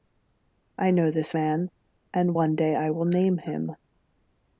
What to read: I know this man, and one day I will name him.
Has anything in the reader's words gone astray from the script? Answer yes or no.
no